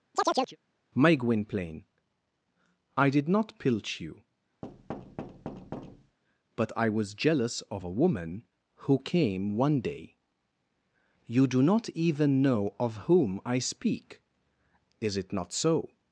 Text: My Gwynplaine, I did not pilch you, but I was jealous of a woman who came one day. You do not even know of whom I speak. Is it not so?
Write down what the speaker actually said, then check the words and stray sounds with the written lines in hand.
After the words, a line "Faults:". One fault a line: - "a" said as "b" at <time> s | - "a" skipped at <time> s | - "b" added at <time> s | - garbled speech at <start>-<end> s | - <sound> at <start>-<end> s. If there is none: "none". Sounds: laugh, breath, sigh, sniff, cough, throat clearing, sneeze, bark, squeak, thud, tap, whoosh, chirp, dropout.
My Gwynplaine, I did not pilch you, but I was jealous of a woman who came one day. You do not even know of whom I speak. Is it not so?
Faults:
- chirp at 0.1-0.6 s
- thud at 4.6-6.2 s